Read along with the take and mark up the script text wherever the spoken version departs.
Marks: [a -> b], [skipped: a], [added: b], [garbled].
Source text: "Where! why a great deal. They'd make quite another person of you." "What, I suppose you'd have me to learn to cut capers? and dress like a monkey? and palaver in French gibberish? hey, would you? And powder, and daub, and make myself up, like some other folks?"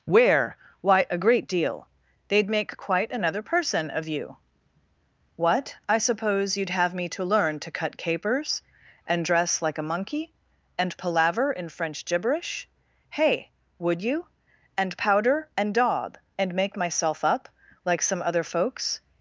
"Where! why a great deal. They'd make quite another person of you." "What, I suppose you'd have me to learn to cut capers? and dress like a monkey? and palaver in French gibberish? hey, would you? And powder, and daub, and make myself up, like some other folks?"